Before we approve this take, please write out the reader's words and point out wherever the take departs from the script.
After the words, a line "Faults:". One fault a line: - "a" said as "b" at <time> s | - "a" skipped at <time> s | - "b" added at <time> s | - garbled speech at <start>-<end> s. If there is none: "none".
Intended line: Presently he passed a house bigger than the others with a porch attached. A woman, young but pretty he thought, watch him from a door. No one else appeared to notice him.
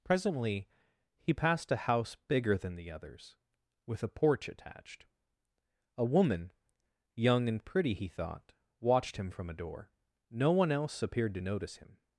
Presently he passed a house bigger than the others with a porch attached. A woman, young and pretty he thought, watched him from a door. No one else appeared to notice him.
Faults:
- "but" said as "and" at 7.5 s
- "watch" said as "watched" at 8.8 s